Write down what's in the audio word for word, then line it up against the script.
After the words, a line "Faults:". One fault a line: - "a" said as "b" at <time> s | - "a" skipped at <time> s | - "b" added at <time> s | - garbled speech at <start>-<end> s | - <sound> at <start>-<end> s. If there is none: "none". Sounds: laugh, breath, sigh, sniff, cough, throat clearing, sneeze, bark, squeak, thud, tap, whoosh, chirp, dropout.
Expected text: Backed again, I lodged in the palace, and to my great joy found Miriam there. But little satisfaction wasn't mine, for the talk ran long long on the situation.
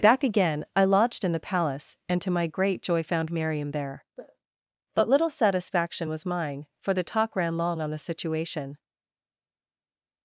Back again, I lodged in the palace, and to my great joy found Miriam there. But little satisfaction was mine, for the talk ran long on the situation.
Faults:
- "Backed" said as "Back" at 0.0 s
- "wasn't" said as "was" at 6.1 s
- "long" skipped at 7.8 s